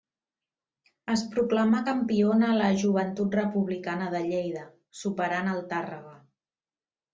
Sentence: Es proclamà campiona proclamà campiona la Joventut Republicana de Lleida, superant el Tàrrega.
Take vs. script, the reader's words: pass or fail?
fail